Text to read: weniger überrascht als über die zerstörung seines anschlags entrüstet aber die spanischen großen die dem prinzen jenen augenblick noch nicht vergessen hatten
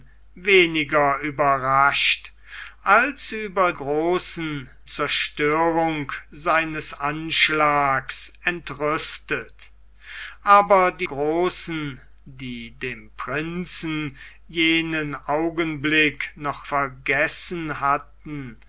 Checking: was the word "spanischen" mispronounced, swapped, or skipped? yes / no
yes